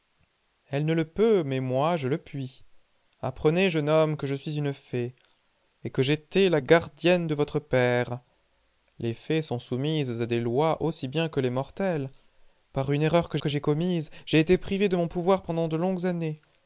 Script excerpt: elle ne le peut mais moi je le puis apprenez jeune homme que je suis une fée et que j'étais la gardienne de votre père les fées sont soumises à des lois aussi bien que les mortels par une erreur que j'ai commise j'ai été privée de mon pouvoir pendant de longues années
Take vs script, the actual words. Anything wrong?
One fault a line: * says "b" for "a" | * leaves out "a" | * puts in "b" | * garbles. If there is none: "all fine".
* puts in "que"